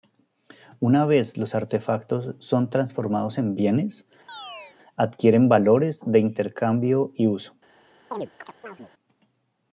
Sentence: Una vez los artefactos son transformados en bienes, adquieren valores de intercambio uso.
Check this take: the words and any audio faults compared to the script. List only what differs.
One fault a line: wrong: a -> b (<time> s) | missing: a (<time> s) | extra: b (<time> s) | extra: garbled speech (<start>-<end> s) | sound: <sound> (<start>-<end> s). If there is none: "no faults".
sound: chirp (4.3-4.8 s)
extra: y (7.1 s)
sound: chirp (8.1-8.9 s)